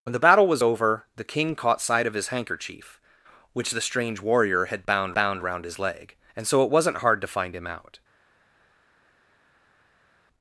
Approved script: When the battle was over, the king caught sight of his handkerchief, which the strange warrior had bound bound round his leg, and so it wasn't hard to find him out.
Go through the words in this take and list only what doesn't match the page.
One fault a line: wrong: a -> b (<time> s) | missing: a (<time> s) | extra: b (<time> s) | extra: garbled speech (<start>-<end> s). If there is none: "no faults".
no faults